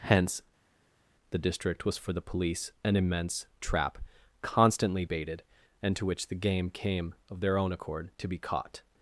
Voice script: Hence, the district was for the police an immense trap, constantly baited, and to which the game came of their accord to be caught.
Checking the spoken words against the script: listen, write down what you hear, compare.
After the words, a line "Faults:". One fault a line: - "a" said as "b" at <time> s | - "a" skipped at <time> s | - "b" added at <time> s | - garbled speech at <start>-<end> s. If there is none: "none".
Hence, the district was for the police an immense trap, constantly baited, and to which the game came of their own accord to be caught.
Faults:
- "own" added at 7.6 s